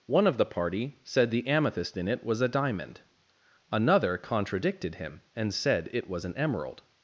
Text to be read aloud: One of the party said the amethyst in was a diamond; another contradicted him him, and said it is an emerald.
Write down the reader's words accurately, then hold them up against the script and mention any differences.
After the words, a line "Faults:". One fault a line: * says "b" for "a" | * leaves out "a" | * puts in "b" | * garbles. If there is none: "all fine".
One of the party said the amethyst in it was a diamond; another contradicted him, and said it was an emerald.
Faults:
* puts in "it"
* leaves out "him"
* says "was" for "is"